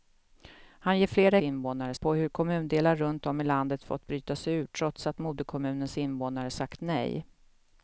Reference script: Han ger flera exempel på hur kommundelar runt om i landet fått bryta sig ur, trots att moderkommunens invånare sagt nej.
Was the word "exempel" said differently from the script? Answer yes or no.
yes